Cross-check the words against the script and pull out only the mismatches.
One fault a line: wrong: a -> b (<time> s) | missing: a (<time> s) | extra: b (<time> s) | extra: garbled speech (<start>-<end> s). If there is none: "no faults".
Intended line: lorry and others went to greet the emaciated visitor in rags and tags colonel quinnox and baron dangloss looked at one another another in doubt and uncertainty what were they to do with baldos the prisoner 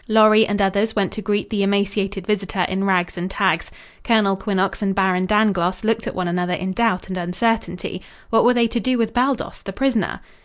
missing: another (6.5 s)